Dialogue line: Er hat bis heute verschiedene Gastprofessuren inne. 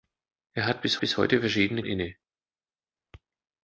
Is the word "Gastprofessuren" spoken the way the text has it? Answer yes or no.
no